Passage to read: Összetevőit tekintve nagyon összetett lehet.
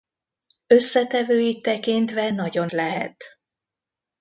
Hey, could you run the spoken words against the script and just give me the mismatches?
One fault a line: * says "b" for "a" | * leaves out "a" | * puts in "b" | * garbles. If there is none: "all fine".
* leaves out "összetett"